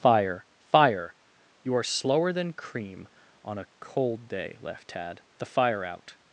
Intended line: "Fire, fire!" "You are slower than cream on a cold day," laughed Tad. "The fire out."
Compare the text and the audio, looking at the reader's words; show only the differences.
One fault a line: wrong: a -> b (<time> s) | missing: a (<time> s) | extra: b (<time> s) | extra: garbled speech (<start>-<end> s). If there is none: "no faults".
no faults